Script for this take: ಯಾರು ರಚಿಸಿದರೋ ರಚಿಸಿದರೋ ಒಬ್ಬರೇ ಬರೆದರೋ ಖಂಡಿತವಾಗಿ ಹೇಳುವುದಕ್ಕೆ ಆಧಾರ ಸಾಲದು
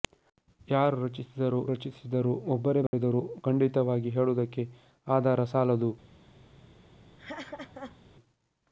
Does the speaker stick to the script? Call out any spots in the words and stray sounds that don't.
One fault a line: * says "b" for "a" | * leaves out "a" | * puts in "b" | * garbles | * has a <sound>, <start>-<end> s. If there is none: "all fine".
* has a dropout, 2.9-2.9 s
* has a laugh, 7.2-8.0 s